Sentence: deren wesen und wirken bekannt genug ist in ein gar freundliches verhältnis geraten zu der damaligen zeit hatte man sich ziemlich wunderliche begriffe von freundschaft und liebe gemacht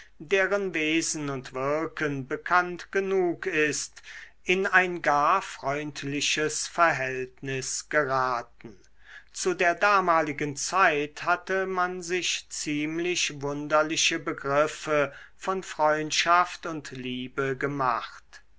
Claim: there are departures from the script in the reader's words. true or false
false